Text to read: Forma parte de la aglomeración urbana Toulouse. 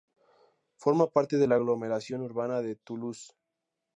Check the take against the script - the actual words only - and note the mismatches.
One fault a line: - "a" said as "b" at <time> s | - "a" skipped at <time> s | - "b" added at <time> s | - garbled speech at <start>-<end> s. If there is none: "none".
- "de" added at 2.6 s